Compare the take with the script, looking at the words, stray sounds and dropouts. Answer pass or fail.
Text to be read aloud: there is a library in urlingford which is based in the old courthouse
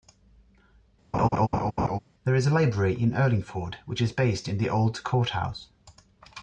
fail